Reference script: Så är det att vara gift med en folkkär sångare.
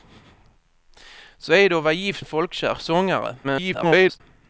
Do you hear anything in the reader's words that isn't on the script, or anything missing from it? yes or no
yes